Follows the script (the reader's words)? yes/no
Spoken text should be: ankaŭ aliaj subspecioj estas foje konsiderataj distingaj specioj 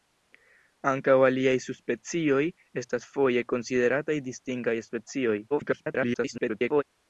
no